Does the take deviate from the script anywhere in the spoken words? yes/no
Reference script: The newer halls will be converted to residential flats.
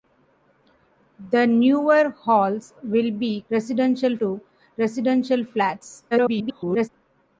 yes